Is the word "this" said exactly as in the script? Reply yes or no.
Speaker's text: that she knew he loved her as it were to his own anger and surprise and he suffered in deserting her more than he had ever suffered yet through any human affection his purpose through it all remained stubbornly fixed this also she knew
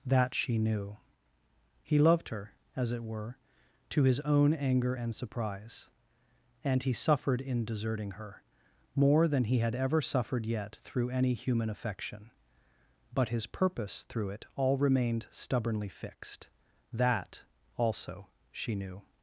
no